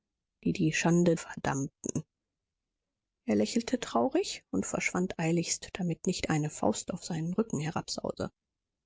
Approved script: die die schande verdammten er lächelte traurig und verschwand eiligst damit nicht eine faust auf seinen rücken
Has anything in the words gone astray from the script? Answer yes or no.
no